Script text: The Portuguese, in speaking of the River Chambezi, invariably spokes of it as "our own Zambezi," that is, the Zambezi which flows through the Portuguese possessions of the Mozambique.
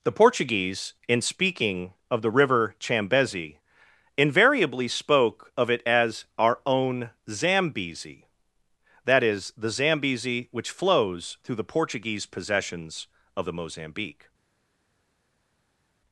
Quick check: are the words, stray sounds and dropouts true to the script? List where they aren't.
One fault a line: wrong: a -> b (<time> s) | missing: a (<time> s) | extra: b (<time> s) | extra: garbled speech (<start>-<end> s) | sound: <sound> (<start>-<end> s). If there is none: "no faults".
wrong: spokes -> spoke (4.9 s)